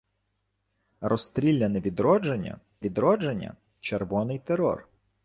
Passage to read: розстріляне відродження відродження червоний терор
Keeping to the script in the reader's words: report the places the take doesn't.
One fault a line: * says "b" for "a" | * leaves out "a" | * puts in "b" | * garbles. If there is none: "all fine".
all fine